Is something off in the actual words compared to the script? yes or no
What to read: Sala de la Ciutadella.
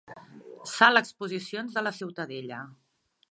yes